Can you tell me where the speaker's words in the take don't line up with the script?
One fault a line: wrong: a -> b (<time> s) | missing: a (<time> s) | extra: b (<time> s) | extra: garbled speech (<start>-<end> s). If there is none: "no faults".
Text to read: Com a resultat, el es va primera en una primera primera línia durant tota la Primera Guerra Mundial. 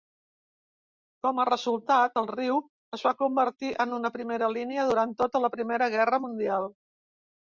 extra: riu (2.3 s)
wrong: primera -> convertir (3.2 s)
missing: primera (4.5 s)